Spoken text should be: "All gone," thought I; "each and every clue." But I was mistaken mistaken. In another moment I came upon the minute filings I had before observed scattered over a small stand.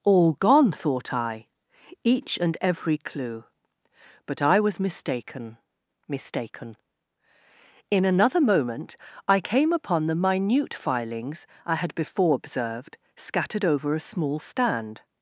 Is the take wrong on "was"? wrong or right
right